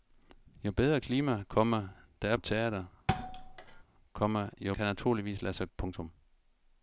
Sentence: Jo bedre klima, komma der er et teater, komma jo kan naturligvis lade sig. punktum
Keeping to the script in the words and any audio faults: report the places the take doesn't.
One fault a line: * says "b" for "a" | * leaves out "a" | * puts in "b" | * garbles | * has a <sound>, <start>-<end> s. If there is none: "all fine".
* has a thud, 3.1-3.8 s